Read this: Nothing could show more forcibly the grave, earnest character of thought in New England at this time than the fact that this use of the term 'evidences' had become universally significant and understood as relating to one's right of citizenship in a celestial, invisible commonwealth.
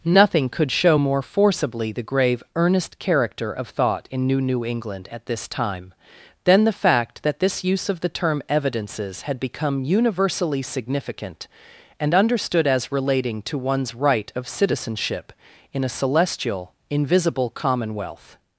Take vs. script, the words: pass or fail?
fail